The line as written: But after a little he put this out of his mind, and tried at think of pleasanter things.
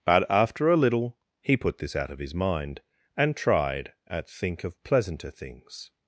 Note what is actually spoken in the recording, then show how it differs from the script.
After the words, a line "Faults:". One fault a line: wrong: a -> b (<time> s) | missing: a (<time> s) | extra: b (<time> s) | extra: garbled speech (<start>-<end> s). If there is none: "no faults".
But after a little he put this out of his mind, and tried at think of pleasanter things.
Faults:
no faults